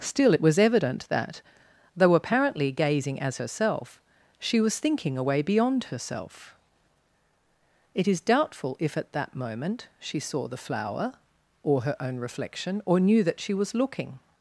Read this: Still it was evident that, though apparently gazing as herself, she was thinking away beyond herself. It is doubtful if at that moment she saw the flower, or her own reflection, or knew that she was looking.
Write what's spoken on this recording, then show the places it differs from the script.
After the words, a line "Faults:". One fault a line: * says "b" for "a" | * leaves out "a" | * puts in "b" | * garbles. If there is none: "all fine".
Still it was evident that, though apparently gazing as herself, she was thinking away beyond herself. It is doubtful if at that moment she saw the flower, or her own reflection, or knew that she was looking.
Faults:
all fine